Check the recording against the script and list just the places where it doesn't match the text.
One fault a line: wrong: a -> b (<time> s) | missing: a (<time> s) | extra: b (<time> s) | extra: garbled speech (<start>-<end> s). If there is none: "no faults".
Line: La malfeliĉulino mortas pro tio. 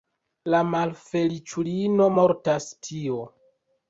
missing: pro (2.7 s)